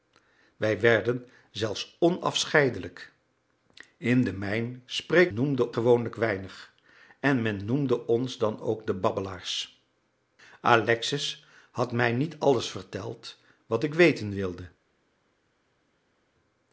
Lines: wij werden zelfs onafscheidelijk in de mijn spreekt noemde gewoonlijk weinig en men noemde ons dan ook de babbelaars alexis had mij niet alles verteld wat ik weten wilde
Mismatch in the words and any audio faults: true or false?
false